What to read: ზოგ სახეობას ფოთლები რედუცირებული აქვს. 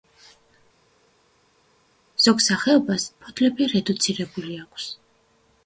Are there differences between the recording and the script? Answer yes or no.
no